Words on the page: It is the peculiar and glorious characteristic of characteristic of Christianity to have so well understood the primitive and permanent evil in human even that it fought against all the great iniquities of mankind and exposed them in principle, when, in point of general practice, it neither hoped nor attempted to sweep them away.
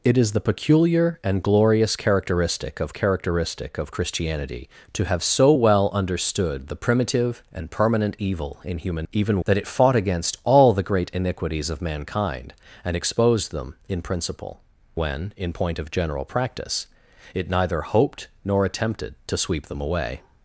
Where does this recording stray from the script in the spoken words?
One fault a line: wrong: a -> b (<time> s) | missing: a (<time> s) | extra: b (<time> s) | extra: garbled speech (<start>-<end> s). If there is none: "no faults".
no faults